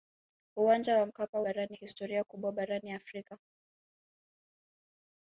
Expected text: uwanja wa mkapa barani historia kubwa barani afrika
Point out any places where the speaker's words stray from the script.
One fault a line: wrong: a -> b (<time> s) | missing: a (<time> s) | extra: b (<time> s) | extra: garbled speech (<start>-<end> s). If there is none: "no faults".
no faults